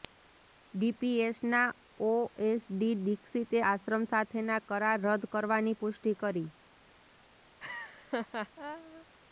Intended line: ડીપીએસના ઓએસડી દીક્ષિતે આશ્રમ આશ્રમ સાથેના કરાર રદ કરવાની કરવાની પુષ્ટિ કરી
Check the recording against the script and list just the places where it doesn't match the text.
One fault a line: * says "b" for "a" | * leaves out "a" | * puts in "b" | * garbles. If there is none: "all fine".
* leaves out "આશ્રમ"
* leaves out "કરવાની"